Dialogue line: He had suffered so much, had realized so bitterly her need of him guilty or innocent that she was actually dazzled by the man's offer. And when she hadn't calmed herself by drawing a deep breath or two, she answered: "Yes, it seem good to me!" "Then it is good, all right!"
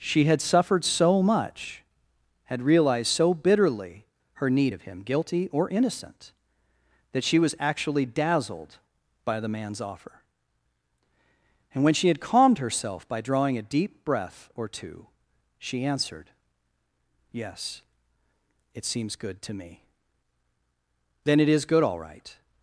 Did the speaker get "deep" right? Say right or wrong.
right